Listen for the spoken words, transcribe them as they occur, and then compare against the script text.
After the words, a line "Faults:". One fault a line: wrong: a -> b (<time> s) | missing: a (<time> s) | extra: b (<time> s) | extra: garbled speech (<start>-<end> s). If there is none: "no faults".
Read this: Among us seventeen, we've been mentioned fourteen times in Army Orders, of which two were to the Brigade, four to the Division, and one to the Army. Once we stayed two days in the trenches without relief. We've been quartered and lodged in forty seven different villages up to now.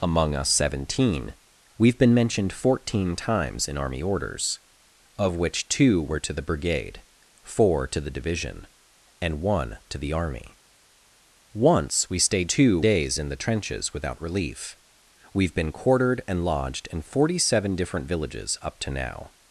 Among us seventeen, we've been mentioned fourteen times in Army Orders, of which two were to the Brigade, four to the Division, and one to the Army. Once we stayed two days in the trenches without relief. We've been quartered and lodged in forty seven different villages up to now.
Faults:
no faults